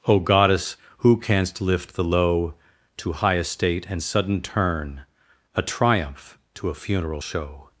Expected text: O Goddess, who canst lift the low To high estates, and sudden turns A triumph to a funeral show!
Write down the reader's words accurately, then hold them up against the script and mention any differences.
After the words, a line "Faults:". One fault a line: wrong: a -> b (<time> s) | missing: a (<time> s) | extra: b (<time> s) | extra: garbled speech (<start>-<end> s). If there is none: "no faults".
O Goddess, who canst lift the low To high estate, and sudden turn A triumph to a funeral show!
Faults:
wrong: estates -> estate (3.4 s)
wrong: turns -> turn (4.4 s)